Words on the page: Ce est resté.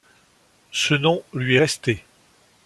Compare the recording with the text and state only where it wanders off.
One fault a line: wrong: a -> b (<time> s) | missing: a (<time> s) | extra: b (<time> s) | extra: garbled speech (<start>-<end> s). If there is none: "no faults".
extra: nom lui (0.9 s)